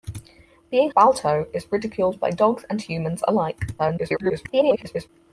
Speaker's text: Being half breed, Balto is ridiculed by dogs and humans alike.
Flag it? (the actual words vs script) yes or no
yes